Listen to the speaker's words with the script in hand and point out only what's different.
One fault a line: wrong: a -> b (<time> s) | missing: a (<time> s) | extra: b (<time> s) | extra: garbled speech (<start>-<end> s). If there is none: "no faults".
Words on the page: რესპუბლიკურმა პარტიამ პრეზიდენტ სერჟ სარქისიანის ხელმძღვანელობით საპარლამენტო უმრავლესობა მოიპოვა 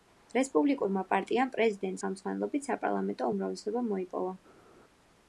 missing: სერჟ სარქისიანის (2.0 s)